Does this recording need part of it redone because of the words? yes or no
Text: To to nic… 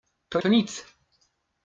no